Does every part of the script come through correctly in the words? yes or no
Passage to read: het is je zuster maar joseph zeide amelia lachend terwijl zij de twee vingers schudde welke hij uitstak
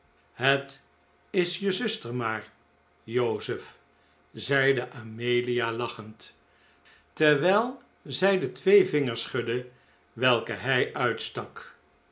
yes